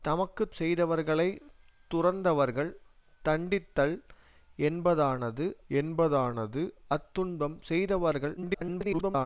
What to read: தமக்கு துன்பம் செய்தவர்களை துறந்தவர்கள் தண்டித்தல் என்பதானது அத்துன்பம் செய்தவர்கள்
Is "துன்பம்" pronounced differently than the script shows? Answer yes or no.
yes